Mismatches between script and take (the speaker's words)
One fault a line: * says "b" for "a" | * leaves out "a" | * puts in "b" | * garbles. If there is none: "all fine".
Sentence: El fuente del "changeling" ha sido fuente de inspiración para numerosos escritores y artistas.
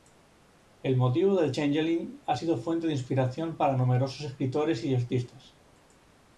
* says "motivo" for "fuente"